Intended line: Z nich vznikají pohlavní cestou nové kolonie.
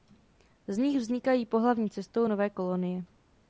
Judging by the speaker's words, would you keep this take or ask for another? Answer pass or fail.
pass